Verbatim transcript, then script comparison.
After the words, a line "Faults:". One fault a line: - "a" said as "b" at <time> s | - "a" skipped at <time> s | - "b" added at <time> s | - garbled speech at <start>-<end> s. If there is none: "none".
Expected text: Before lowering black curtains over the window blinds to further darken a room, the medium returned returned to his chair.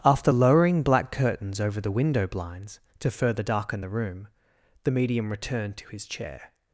After lowering black curtains over the window blinds to further darken the room, the medium returned to his chair.
Faults:
- "Before" said as "After" at 0.0 s
- "a" said as "the" at 3.8 s
- "returned" skipped at 5.8 s